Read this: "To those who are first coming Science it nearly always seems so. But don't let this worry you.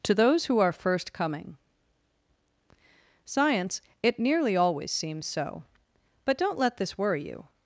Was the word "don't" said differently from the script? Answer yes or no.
no